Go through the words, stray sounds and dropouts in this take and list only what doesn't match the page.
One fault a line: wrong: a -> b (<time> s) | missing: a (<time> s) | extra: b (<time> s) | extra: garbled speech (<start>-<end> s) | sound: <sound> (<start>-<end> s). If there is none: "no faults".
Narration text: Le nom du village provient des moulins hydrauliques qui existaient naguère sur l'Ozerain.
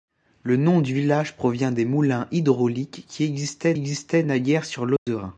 extra: existaient (3.7 s)
sound: dropout (5.0-5.1 s)